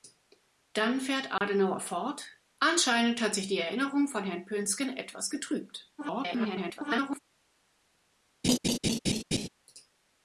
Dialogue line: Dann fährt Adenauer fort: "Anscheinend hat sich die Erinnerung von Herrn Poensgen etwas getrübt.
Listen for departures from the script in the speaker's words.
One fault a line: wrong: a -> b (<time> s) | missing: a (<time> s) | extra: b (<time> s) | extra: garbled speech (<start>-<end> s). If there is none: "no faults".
extra: garbled speech (6.0-7.2 s)